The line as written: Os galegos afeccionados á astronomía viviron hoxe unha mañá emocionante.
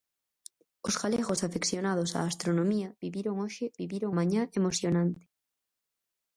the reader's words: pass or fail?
fail